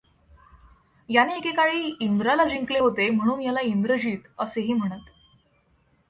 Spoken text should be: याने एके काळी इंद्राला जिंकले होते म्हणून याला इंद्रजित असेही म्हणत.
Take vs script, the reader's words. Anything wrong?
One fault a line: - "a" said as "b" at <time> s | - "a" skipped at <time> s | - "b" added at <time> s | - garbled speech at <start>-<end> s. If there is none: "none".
none